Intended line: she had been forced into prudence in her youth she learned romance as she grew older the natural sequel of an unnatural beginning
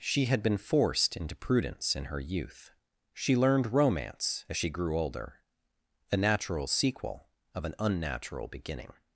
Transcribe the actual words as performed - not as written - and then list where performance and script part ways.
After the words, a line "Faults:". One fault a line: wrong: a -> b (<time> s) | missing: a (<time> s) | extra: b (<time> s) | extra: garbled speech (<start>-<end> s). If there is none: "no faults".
she had been forced into prudence in her youth she learned romance as she grew older a natural sequel of an unnatural beginning
Faults:
wrong: the -> a (6.1 s)